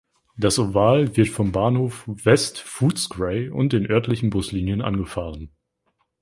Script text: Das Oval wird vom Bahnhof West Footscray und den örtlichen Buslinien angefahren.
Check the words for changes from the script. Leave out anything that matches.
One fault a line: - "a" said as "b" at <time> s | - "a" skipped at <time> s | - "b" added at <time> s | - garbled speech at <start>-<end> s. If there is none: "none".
none